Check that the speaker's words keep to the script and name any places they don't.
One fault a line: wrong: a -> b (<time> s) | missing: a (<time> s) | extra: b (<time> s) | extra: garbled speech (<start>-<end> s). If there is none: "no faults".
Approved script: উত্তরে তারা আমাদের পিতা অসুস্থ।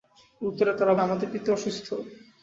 no faults